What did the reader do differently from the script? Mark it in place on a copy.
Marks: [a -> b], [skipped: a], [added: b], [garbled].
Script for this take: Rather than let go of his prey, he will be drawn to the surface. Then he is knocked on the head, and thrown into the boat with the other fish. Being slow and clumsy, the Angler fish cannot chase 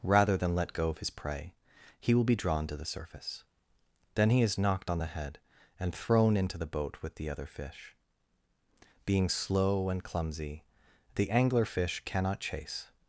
Rather than let go of his prey, he will be drawn to the surface. Then he is knocked on the head, and thrown into the boat with the other fish. Being slow and clumsy, the Angler fish cannot chase